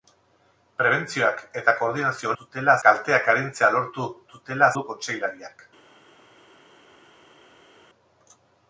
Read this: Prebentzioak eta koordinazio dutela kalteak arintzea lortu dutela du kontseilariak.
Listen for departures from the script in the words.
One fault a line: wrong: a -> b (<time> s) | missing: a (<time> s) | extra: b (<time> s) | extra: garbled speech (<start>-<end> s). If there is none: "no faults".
no faults